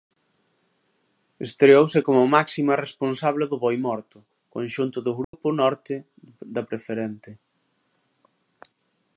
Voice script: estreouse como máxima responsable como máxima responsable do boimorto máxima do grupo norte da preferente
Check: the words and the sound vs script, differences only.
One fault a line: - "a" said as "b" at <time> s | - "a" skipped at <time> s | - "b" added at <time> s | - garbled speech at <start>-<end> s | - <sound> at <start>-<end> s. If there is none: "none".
- "como máxima responsable" skipped at 3.5 s
- "máxima" said as "conxunto" at 4.5 s
- dropout at 5.2-5.3 s